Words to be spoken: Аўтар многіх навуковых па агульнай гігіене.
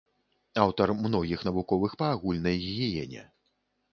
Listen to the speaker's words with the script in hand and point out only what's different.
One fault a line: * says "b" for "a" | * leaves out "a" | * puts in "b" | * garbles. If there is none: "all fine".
all fine